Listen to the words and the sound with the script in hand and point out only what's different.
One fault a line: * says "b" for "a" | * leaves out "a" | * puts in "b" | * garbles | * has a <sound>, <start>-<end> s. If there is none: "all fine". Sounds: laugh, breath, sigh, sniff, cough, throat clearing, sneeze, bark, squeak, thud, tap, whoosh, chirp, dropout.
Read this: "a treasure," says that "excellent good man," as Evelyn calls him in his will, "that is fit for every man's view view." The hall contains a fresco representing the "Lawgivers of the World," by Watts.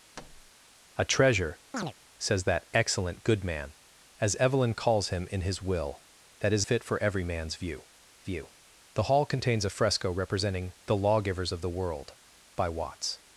* has a thud, 0.2-0.5 s
* has a chirp, 1.7-1.9 s